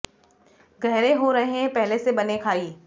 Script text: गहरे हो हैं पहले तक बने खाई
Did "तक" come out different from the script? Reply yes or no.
yes